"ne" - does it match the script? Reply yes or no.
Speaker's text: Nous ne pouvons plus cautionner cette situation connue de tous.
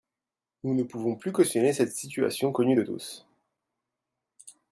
yes